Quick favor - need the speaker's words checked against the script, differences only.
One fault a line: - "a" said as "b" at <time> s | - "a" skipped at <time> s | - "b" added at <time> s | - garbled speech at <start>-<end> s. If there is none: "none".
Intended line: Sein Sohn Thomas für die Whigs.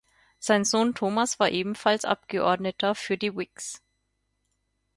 - "war ebenfalls Abgeordneter" added at 1.4 s